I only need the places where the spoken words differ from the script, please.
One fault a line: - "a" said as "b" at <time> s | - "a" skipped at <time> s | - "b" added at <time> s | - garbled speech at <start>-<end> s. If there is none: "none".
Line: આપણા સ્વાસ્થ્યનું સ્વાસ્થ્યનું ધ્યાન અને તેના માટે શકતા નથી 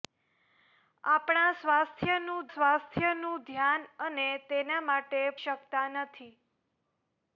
none